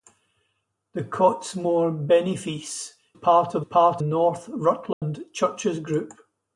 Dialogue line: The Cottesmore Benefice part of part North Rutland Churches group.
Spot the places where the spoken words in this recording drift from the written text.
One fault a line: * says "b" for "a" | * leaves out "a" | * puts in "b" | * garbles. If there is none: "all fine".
all fine